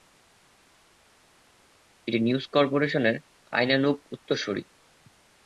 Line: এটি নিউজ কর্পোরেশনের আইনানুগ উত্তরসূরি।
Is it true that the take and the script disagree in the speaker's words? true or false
false